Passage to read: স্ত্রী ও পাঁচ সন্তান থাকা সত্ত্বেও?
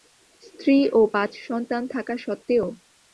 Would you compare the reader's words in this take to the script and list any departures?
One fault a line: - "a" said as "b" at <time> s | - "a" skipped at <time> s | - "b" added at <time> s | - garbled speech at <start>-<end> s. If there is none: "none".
none